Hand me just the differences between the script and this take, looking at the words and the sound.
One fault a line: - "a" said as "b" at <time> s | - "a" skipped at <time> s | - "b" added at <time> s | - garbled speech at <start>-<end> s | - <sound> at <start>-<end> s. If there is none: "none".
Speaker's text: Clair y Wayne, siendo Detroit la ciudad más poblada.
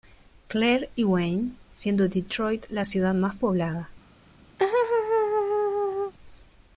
- laugh at 4.6-6.1 s